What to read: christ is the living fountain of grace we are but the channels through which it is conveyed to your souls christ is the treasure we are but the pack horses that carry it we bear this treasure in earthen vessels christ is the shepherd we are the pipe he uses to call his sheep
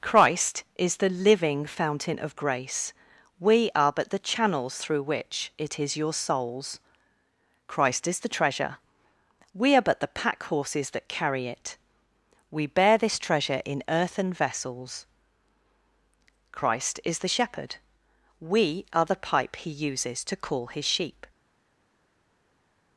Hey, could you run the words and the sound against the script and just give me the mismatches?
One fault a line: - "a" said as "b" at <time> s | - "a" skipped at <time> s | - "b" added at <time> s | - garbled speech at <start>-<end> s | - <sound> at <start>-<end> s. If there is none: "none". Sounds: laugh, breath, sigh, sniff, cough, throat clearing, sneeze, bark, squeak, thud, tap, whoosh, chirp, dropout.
- "conveyed to" skipped at 6.0 s